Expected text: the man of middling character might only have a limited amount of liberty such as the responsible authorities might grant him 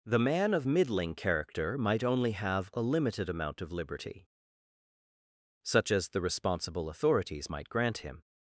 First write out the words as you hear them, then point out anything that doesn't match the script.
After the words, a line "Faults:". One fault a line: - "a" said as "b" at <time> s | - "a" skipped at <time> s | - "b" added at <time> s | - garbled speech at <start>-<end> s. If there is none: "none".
the man of middling character might only have a limited amount of liberty such as the responsible authorities might grant him
Faults:
none